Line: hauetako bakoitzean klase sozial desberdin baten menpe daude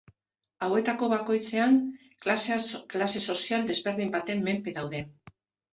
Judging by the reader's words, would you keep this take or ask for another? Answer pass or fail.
pass